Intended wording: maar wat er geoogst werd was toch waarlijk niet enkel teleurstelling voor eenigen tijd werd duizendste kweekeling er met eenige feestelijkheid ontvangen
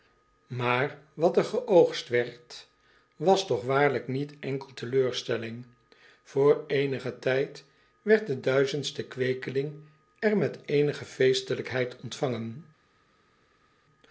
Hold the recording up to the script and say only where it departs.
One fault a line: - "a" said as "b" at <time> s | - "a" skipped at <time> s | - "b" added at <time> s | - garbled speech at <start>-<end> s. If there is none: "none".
- "de" added at 8.3 s